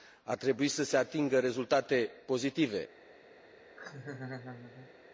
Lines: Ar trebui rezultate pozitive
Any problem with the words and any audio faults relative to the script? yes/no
yes